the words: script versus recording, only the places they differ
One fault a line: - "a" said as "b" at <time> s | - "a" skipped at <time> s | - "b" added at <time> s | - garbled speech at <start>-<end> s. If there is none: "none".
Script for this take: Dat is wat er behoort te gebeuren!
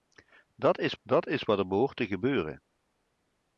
- "dat is" added at 1.0 s